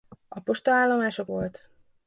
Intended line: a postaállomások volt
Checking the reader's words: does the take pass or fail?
pass